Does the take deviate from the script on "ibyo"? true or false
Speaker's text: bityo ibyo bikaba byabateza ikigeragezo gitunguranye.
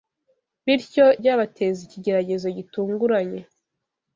true